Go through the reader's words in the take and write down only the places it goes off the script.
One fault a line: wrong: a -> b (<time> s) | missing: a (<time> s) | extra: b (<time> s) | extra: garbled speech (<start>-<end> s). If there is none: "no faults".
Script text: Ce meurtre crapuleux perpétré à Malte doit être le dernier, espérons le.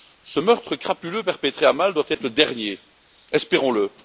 no faults